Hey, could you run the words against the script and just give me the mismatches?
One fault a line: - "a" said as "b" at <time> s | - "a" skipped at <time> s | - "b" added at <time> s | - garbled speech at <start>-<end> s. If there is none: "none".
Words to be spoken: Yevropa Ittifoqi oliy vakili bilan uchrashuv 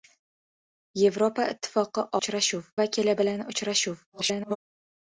- "oliy" said as "uchrashuv" at 2.2 s
- garbled speech at 4.1-4.6 s